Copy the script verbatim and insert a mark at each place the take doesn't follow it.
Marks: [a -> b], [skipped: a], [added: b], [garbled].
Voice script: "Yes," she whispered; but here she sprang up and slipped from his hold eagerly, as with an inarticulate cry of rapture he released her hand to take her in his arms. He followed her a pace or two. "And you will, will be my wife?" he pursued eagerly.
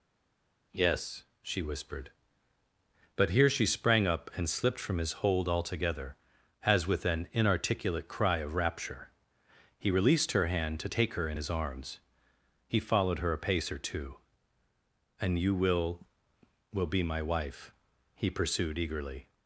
"Yes," she whispered; but here she sprang up and slipped from his hold [eagerly, -> altogether] as with an inarticulate cry of rapture he released her hand to take her in his arms. He followed her a pace or two. "And you will, will be my wife?" he pursued eagerly.